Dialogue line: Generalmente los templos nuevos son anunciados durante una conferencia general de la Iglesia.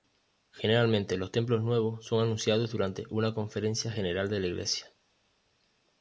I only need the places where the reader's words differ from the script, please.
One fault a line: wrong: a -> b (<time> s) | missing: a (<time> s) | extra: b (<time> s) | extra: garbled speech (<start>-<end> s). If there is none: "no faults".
no faults